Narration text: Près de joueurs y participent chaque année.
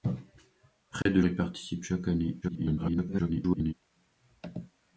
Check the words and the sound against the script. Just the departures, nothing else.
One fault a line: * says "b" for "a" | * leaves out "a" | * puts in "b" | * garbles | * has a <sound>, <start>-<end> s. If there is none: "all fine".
* has a dropout, 1.0-1.1 s
* leaves out "joueurs"
* garbles